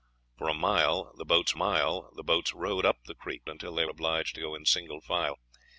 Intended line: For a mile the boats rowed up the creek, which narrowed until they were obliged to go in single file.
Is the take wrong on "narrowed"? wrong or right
wrong